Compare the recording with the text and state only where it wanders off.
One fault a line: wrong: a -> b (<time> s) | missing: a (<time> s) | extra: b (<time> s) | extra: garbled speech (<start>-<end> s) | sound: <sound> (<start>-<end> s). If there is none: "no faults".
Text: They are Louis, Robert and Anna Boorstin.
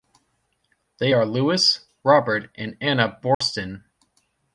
sound: dropout (3.3-3.4 s)